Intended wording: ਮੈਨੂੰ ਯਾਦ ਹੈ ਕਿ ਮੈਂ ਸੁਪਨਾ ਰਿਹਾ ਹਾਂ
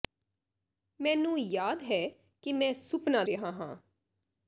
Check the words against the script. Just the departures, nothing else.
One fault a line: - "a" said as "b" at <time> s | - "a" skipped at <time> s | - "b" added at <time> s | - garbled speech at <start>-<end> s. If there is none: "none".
none